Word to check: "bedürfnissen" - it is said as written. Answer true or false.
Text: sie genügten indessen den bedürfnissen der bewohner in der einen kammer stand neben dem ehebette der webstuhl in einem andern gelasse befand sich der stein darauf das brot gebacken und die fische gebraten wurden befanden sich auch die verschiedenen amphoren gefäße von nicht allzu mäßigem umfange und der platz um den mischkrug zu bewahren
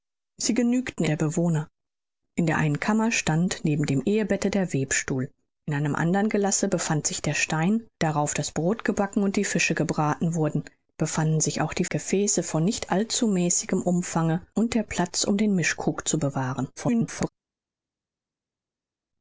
false